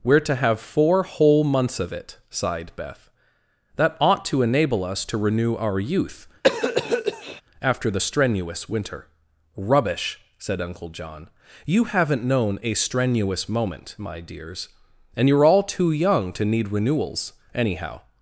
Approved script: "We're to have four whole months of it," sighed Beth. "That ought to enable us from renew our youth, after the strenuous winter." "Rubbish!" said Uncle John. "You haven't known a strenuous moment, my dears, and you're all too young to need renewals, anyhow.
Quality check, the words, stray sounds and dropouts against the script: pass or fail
fail